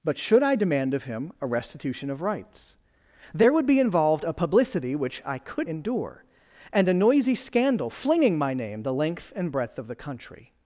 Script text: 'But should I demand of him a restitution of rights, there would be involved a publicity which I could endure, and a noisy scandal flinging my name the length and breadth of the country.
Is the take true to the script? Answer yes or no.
yes